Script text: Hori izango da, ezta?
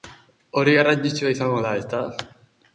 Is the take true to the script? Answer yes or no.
no